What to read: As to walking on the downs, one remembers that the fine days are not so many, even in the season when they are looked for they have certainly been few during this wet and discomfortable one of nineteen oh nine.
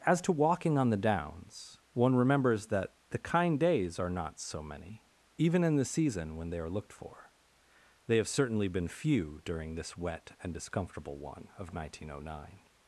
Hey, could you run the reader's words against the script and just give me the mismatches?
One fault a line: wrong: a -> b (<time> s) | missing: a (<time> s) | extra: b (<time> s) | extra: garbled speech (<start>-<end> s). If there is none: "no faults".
wrong: fine -> kind (3.2 s)